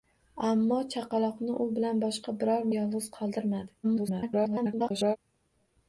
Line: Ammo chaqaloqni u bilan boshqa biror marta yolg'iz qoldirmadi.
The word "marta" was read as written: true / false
false